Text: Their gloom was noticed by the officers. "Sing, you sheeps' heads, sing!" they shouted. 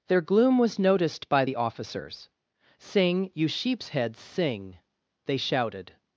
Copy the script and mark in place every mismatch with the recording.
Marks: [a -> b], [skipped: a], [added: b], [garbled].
Their gloom was noticed by the officers. "Sing, you sheeps' heads, sing!" they shouted.